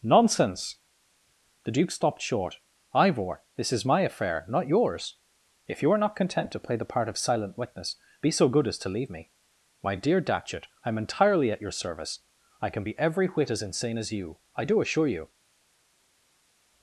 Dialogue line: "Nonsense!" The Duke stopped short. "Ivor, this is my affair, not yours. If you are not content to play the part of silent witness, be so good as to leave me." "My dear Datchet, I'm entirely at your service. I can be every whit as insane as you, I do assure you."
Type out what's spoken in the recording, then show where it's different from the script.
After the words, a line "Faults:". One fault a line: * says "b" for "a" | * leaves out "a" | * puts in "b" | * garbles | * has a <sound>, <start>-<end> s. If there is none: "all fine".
"Nonsense!" The Duke stopped short. "Ivor, this is my affair, not yours. If you are not content to play the part of silent witness, be so good as to leave me." "My dear Datchet, I'm entirely at your service. I can be every whit as insane as you, I do assure you."
Faults:
all fine